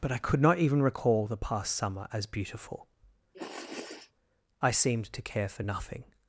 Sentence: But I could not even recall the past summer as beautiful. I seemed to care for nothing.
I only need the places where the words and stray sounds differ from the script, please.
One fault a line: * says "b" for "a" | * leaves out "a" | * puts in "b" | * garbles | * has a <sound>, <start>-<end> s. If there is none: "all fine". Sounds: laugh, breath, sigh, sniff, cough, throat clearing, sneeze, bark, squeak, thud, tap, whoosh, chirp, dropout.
* has a sniff, 3.3-4.1 s